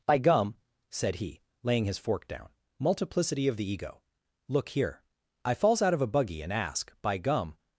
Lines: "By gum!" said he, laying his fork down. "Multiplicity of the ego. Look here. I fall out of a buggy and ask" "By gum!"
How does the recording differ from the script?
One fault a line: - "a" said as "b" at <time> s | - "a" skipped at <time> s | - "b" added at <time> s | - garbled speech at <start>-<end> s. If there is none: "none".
- "fall" said as "falls" at 5.5 s